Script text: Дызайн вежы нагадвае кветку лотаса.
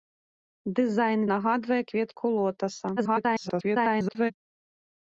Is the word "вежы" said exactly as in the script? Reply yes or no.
no